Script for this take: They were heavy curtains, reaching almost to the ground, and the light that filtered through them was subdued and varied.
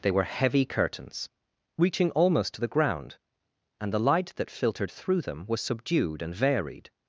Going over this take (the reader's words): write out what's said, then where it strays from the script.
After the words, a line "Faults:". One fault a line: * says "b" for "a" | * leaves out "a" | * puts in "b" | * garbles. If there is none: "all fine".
They were heavy curtains, reaching almost to the ground, and the light that filtered through them was subdued and varied.
Faults:
all fine